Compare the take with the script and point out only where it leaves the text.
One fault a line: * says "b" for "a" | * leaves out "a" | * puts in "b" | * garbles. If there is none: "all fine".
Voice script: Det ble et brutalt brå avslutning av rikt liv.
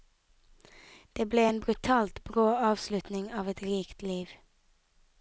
* says "en" for "et"
* puts in "et"